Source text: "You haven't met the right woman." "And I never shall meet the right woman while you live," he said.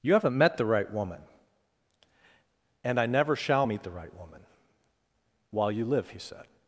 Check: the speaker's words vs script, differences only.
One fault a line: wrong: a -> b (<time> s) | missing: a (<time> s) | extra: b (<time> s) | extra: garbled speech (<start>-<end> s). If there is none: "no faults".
no faults